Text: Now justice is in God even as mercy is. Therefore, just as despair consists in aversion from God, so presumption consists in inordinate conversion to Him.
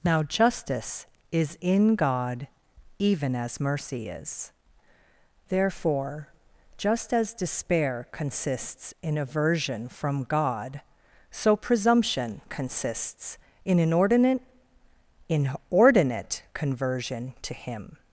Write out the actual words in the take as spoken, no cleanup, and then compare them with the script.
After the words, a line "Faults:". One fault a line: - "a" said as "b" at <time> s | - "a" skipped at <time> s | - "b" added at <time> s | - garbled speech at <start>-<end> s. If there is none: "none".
Now justice is in God even as mercy is. Therefore, just as despair consists in aversion from God, so presumption consists in inordinate inordinate conversion to Him.
Faults:
- "inordinate" added at 15.3 s